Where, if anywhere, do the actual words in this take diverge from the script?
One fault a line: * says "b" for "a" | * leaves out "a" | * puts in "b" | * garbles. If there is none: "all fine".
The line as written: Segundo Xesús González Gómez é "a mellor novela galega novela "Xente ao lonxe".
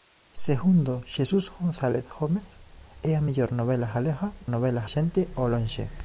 all fine